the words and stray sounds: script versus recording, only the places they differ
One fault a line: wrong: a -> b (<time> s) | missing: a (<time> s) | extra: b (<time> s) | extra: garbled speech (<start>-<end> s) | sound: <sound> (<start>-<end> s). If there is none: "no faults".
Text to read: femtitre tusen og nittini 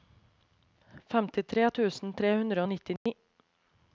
extra: tre hundre (2.2 s)
sound: dropout (3.0-3.1 s)